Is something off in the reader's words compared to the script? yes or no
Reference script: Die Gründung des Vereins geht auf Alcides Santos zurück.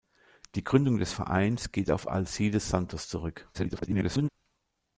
yes